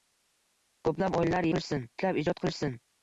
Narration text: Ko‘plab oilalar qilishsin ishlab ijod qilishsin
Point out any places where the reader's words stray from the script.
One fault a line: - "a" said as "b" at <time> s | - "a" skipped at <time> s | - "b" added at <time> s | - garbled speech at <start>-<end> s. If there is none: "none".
none